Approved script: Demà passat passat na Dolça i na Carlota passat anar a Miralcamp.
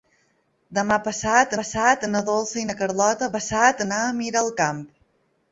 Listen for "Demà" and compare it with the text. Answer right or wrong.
right